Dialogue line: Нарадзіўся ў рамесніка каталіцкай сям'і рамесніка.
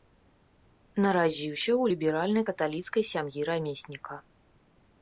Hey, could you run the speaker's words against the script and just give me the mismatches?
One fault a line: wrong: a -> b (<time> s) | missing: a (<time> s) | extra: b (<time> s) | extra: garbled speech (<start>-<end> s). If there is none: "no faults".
wrong: рамесніка -> ліберальнай (1.9 s)